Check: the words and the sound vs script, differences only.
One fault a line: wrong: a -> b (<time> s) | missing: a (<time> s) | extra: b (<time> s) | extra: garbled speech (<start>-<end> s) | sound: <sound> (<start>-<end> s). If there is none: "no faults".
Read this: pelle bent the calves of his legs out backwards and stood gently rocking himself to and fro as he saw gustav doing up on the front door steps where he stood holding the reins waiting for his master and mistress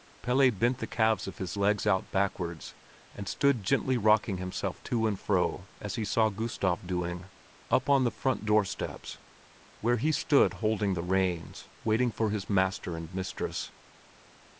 no faults